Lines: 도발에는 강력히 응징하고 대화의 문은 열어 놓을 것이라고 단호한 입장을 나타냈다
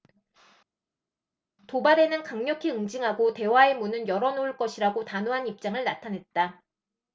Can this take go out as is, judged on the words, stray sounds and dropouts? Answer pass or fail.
pass